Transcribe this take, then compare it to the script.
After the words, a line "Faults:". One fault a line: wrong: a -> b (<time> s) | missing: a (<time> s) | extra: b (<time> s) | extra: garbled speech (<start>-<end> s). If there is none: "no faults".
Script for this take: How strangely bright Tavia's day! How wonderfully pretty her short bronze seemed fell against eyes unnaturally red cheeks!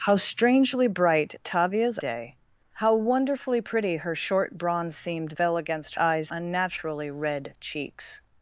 How strangely bright Tavia's day! How wonderfully pretty her short bronze seemed fell against eyes unnaturally red cheeks!
Faults:
no faults